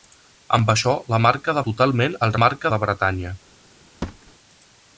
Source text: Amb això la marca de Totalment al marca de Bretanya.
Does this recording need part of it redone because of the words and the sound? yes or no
yes